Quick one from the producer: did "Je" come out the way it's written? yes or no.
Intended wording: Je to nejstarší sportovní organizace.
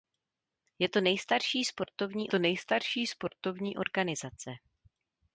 yes